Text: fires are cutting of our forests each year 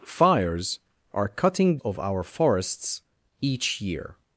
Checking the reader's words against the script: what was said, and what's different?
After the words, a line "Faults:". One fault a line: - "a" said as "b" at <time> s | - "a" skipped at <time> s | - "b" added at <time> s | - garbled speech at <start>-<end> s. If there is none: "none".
fires are cutting of our forests each year
Faults:
none